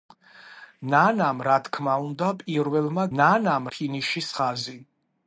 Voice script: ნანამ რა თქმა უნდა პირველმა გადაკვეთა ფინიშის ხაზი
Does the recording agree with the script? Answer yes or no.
no